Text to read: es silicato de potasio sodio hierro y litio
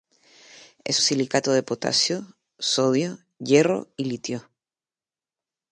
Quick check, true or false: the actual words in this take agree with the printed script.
true